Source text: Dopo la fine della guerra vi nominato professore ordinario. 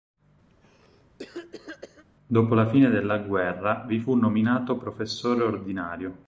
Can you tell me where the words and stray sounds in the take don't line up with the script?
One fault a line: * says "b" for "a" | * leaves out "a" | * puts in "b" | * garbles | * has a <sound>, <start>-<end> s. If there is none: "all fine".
* has a cough, 0.5-2.0 s
* puts in "fu"